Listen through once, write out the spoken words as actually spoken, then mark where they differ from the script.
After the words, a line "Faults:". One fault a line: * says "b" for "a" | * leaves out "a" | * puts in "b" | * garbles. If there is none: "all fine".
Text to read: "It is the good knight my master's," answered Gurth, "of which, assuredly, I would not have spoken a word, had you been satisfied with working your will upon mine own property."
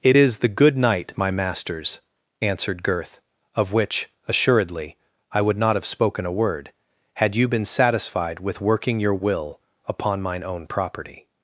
"It is the good knight my master's," answered Gurth, "of which, assuredly, I would not have spoken a word, had you been satisfied with working your will upon mine own property."
Faults:
all fine